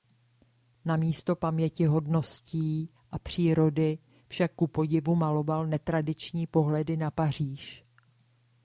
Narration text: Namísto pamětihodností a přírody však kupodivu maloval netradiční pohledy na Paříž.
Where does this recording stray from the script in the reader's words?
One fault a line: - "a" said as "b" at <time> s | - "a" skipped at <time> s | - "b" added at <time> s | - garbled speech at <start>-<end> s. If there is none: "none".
none